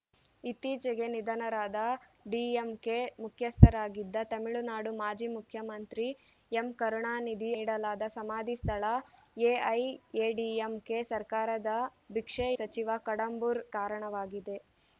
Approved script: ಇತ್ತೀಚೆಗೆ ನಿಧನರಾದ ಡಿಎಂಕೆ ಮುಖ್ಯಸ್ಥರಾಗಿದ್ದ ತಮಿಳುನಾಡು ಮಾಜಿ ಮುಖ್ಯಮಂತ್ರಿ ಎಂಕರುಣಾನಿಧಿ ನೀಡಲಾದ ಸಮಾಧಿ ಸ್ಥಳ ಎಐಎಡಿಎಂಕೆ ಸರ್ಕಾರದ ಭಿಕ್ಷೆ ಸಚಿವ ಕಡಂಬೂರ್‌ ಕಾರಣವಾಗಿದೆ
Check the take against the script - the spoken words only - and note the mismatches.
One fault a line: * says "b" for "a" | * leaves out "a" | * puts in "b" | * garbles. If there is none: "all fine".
all fine